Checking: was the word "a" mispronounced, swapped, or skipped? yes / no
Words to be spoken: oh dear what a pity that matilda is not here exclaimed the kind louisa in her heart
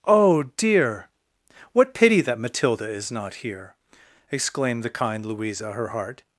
yes